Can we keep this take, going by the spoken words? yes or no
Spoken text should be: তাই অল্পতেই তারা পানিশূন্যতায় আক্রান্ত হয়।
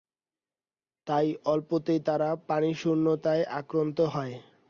yes